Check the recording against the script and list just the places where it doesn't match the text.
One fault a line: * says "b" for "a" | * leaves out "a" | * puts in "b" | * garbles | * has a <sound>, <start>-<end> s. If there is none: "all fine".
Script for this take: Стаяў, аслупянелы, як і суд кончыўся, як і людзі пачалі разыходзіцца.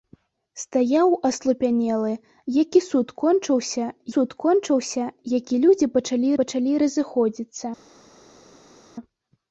* puts in "суд кончыўся"
* puts in "пачалі"